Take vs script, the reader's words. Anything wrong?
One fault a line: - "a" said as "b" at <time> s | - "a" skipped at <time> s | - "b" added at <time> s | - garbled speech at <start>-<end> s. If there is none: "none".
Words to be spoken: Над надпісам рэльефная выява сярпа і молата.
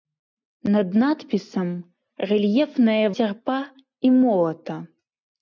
- "выява" skipped at 3.0 s